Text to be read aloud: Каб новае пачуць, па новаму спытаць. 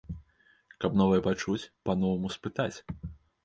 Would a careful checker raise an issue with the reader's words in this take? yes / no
no